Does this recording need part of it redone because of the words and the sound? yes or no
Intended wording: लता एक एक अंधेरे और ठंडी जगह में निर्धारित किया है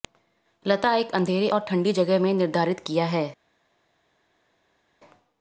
yes